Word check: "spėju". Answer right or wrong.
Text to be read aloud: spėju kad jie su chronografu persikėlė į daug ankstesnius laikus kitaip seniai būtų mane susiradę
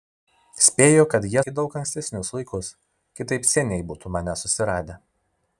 right